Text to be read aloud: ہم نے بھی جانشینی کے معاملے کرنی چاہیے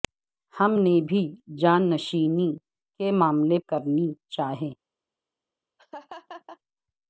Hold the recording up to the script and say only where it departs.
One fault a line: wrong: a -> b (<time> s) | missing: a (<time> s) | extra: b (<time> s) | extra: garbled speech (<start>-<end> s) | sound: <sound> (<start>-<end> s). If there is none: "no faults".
sound: laugh (5.8-6.6 s)